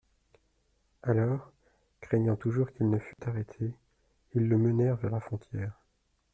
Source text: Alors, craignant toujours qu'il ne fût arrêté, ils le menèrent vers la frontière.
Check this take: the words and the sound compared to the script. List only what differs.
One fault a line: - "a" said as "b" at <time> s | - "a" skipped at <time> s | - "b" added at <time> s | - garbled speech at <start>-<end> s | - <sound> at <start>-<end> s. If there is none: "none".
- dropout at 3.1-3.2 s